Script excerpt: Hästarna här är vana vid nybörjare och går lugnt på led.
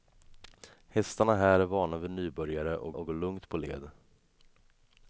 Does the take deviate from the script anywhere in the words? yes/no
yes